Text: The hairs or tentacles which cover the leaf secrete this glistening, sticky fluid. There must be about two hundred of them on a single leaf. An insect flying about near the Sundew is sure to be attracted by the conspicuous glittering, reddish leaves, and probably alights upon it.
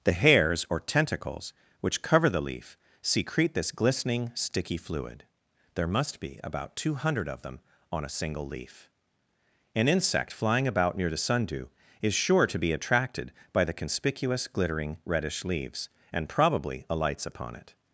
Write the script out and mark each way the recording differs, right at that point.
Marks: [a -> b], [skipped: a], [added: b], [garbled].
The hairs or tentacles which cover the leaf secrete this glistening, sticky fluid. There must be about two hundred of them on a single leaf. An insect flying about near the Sundew is sure to be attracted by the conspicuous glittering, reddish leaves, and probably alights upon it.